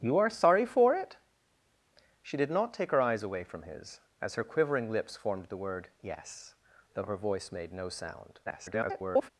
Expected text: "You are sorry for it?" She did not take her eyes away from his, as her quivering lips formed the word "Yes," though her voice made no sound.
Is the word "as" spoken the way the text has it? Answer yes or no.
yes